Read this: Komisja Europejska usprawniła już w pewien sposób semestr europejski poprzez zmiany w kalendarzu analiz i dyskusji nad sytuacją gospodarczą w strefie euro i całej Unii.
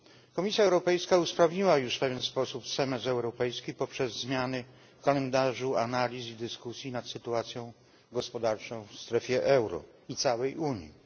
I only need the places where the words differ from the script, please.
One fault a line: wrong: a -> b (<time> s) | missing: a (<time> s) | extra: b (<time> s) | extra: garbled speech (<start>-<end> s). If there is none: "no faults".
no faults